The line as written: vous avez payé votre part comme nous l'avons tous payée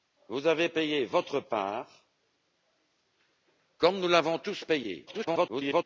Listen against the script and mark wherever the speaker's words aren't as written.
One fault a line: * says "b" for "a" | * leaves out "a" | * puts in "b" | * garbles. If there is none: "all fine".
* garbles